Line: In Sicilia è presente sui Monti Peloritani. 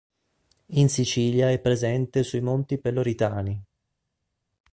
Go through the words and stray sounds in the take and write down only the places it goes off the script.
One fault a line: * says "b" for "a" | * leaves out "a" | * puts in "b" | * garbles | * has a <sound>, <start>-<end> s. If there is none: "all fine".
all fine